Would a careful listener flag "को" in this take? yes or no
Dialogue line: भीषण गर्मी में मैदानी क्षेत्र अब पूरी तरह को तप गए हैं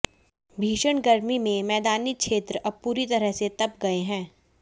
yes